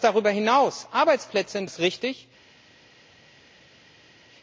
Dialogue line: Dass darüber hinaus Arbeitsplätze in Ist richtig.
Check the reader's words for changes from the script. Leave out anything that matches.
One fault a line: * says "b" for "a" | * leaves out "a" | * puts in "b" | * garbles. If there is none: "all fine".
all fine